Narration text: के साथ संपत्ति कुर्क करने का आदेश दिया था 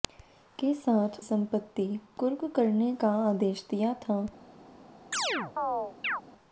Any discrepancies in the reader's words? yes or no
no